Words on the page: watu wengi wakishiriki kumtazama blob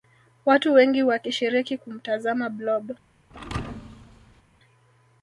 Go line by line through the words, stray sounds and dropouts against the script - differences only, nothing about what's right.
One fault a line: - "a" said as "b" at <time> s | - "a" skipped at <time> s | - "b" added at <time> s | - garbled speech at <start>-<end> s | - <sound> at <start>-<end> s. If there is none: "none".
- thud at 3.3-4.4 s